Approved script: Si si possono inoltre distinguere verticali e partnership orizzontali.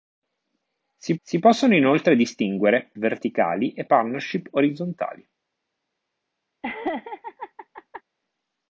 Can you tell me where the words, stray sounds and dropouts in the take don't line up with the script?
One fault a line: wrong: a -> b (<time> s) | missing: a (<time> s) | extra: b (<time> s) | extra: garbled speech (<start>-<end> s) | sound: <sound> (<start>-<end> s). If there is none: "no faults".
sound: laugh (6.6-8.0 s)